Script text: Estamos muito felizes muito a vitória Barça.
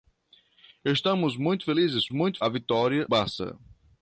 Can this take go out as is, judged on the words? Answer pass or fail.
pass